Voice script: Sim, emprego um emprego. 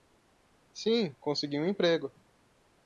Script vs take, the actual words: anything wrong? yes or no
yes